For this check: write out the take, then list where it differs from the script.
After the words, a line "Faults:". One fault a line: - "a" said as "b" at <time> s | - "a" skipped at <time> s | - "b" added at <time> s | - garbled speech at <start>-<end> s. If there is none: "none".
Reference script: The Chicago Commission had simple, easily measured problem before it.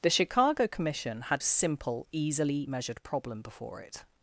The Chicago Commission had simple, easily measured problem before it.
Faults:
none